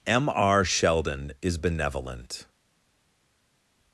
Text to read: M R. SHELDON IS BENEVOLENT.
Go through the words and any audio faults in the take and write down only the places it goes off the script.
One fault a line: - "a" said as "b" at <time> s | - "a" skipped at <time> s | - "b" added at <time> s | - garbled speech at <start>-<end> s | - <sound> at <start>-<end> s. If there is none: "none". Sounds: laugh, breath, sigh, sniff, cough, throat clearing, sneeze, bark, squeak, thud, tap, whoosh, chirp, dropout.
none